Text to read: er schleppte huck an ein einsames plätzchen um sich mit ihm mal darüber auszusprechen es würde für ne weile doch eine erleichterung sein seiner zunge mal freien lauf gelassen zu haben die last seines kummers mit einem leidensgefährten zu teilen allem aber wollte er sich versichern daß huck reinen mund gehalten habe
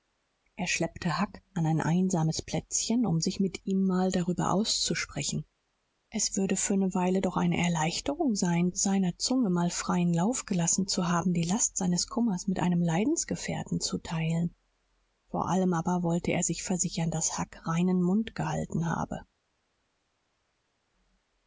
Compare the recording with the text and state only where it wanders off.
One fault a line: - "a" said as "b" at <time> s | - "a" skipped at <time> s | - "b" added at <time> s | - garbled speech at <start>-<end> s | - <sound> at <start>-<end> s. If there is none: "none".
- "vor" added at 15.3 s